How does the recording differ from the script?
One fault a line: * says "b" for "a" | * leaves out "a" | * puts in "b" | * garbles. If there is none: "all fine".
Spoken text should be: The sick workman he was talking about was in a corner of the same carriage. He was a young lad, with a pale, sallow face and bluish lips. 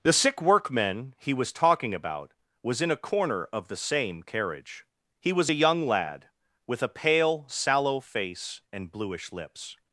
all fine